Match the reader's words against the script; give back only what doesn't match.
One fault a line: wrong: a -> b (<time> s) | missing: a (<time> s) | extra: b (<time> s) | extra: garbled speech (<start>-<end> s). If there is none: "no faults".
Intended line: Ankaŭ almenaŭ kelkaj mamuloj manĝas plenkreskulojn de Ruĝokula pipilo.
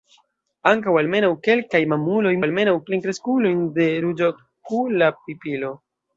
wrong: manĝas -> almenaŭ (2.4 s)